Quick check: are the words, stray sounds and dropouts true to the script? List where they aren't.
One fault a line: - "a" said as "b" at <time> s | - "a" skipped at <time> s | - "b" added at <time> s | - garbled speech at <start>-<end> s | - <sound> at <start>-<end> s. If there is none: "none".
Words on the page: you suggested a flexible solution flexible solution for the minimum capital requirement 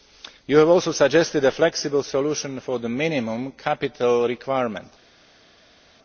- "have also" added at 0.6 s
- "flexible solution" skipped at 2.6 s